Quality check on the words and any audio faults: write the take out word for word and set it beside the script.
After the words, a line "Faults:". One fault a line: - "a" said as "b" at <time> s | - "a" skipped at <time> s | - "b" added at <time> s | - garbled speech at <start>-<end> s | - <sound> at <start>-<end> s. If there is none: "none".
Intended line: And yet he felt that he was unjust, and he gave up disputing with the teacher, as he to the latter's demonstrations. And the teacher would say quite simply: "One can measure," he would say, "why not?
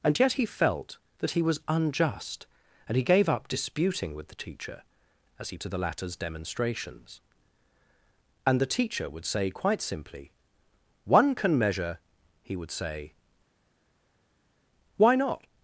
And yet he felt that he was unjust, and he gave up disputing with the teacher, as he to the latter's demonstrations. And the teacher would say quite simply: "One can measure," he would say, "why not?
Faults:
none